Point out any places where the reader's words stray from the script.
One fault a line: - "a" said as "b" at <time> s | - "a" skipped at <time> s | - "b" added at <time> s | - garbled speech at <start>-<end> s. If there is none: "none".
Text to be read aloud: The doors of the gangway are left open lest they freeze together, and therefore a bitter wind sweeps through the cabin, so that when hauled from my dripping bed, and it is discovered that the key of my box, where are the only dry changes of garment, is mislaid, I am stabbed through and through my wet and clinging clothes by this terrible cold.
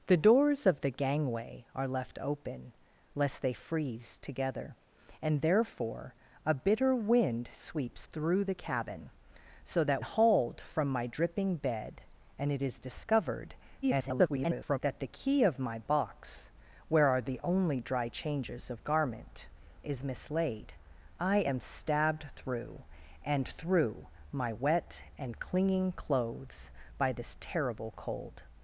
- "when" skipped at 10.0 s
- garbled speech at 13.8-14.8 s